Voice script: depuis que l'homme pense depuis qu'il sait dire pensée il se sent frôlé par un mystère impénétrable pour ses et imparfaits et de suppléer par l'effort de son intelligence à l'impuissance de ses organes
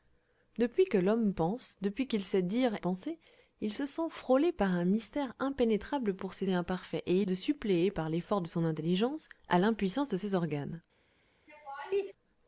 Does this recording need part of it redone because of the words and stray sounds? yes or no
yes